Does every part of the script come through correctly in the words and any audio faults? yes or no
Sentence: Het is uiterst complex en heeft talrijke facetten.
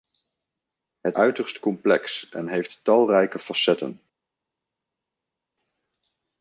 no